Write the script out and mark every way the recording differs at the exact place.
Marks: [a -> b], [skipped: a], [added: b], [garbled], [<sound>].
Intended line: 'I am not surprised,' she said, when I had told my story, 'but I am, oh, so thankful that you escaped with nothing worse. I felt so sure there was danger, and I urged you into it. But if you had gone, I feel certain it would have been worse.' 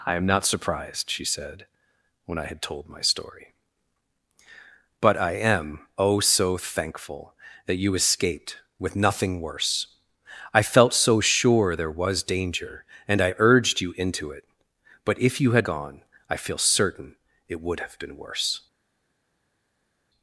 'I am not surprised,' she said, when I had told my story, 'but I am, oh, so thankful that you escaped with nothing worse. I felt so sure there was danger, and I urged you into it. But if you had gone, I feel certain it would have been worse.'